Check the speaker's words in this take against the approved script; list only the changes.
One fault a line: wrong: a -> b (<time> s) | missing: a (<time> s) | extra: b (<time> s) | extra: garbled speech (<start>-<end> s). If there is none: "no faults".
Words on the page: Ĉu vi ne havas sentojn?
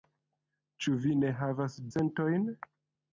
no faults